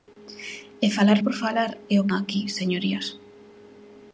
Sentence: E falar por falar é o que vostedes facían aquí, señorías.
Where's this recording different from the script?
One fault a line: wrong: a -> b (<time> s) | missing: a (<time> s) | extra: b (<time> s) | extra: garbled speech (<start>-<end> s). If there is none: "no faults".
missing: que vostedes facían (2.1 s)